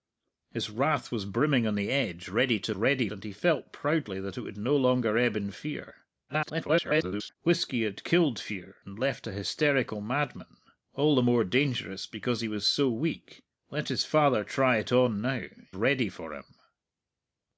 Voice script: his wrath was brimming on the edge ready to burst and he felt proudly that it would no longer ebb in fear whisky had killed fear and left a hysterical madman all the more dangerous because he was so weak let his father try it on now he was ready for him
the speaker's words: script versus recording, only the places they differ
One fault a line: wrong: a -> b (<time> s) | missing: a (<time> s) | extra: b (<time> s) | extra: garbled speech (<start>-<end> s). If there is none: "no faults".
wrong: burst -> ready (2.7 s)
extra: garbled speech (6.3-7.4 s)
missing: he was (15.5 s)